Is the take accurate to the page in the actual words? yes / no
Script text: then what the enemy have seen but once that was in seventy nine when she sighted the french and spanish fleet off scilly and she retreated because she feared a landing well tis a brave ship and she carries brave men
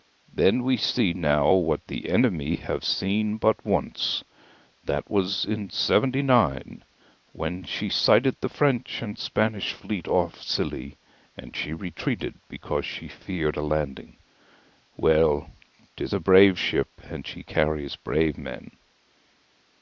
no